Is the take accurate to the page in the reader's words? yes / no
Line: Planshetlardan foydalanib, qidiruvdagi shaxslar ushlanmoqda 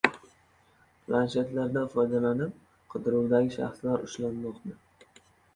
yes